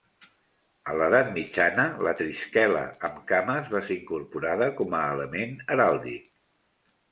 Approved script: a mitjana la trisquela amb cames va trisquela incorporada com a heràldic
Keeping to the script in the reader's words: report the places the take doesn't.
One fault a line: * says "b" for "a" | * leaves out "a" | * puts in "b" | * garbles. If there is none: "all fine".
* puts in "l'edat"
* says "ser" for "trisquela"
* puts in "element"